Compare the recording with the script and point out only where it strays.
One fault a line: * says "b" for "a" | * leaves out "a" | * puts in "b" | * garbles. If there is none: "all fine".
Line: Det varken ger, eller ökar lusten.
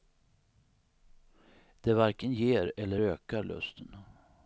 all fine